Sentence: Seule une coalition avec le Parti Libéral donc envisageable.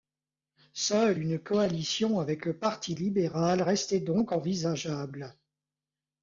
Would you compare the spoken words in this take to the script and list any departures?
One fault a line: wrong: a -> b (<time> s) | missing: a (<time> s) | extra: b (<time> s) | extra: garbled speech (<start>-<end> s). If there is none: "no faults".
extra: restait (3.6 s)